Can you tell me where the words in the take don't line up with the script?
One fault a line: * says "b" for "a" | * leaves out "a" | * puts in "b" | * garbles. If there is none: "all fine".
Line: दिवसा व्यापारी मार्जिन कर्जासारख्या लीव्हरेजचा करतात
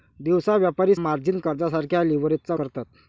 all fine